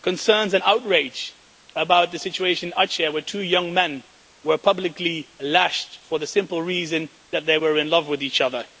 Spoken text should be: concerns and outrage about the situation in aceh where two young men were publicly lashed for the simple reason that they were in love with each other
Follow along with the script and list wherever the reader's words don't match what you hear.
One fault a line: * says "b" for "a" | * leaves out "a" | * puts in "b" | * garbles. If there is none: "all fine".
all fine